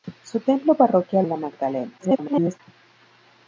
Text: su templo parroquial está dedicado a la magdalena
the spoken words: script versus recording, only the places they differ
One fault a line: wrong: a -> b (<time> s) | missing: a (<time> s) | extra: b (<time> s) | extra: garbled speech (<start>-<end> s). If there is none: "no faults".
missing: está dedicado (1.3 s)
extra: garbled speech (2.0-2.6 s)